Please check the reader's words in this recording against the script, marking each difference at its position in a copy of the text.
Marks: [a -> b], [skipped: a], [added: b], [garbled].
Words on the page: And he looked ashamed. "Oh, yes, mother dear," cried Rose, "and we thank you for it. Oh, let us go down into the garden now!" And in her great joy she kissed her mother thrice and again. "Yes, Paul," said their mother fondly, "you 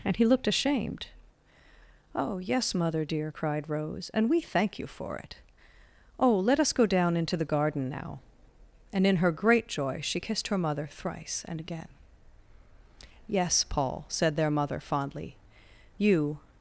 And he looked ashamed. "Oh, yes, mother dear," cried Rose, "and we thank you for it. Oh, let us go down into the garden now!" And in her great joy she kissed her mother thrice and again. "Yes, Paul," said their mother fondly, "you